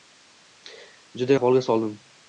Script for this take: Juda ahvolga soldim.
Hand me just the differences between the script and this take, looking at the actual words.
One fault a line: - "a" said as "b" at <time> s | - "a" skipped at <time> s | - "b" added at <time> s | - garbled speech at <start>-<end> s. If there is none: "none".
none